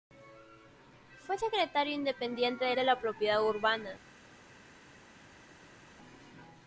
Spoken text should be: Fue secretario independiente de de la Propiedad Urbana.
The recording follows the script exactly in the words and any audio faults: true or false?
true